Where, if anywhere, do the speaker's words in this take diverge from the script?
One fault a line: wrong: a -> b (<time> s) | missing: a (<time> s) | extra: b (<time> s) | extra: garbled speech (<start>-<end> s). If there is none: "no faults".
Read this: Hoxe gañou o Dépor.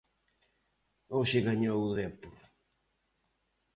no faults